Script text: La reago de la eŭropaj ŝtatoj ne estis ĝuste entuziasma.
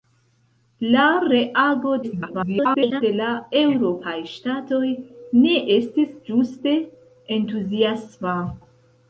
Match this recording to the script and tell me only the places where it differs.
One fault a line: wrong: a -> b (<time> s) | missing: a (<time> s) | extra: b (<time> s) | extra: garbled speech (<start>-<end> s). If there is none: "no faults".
extra: garbled speech (2.0-3.0 s)